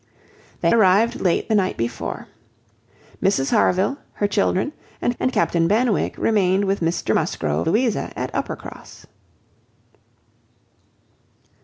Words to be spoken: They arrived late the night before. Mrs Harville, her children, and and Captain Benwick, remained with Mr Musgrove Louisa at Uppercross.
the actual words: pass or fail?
pass